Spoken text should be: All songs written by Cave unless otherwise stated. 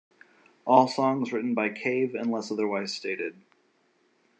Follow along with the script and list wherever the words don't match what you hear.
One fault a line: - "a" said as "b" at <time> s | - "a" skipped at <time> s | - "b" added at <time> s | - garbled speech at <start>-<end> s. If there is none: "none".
none